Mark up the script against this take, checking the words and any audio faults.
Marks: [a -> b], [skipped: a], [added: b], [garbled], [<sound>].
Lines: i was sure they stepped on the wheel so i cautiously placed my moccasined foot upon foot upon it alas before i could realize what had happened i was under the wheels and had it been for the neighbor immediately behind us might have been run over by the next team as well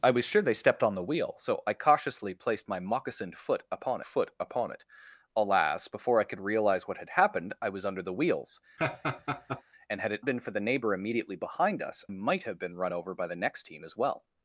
i was sure they stepped on the wheel so i cautiously placed my moccasined foot upon foot upon it alas before i could realize what had happened i was under the wheels [laugh] and had it been for the neighbor immediately behind us might have been run over by the next team as well